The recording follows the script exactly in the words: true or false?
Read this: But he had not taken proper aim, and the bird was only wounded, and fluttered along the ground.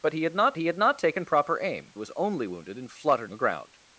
false